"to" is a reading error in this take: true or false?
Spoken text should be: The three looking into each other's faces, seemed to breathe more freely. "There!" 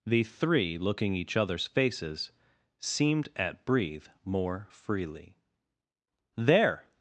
true